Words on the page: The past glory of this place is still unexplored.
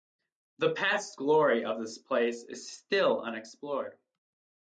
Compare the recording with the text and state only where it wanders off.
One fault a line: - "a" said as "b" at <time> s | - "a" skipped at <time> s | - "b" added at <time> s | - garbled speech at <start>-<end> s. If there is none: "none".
none